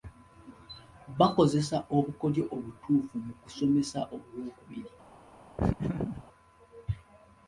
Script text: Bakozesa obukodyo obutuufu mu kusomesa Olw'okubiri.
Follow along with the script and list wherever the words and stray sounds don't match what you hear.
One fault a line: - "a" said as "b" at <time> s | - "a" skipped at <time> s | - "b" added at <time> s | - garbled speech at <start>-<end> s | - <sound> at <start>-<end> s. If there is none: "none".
- laugh at 5.6-6.2 s